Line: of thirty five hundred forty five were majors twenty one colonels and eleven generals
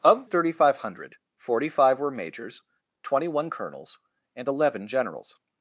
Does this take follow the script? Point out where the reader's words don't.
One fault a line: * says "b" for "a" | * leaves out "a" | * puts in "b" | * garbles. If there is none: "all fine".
all fine